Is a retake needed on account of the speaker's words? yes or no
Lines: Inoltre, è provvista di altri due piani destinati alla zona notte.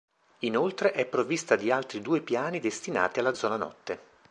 no